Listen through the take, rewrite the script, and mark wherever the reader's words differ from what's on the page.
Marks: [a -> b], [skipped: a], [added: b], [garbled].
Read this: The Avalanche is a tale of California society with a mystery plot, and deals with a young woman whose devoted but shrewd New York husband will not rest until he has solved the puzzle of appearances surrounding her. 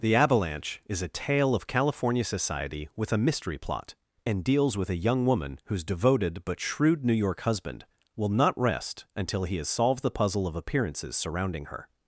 The Avalanche is a tale of California society with a mystery plot, and deals with a young woman whose devoted but shrewd New York husband will not rest until he has solved the puzzle of appearances surrounding her.